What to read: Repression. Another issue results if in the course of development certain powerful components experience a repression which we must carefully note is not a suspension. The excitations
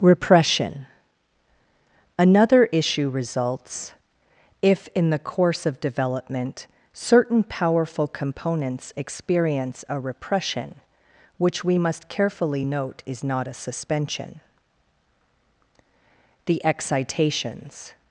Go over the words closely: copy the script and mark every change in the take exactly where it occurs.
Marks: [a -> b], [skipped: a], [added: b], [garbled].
Repression. Another issue results if in the course of development certain powerful components experience a repression which we must carefully note is not a suspension. The excitations